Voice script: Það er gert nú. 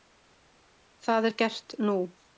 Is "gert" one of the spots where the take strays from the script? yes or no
no